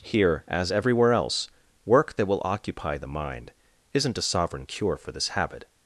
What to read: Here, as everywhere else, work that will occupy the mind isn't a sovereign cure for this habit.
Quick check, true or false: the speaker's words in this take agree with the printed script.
true